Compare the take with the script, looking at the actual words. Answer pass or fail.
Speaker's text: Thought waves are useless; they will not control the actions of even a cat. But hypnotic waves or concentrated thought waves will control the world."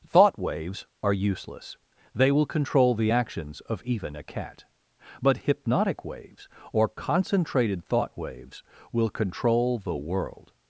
fail